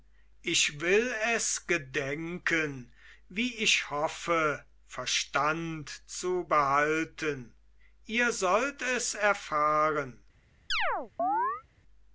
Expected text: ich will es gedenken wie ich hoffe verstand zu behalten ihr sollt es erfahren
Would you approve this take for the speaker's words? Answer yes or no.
yes